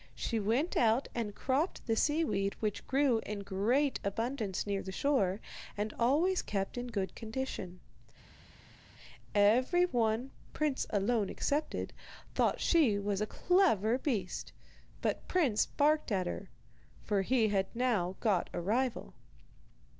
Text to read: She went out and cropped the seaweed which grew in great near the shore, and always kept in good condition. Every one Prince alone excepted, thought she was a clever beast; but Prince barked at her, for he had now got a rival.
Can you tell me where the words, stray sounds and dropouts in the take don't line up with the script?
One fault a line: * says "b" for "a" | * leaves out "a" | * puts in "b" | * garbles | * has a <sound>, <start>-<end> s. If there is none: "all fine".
* puts in "abundance"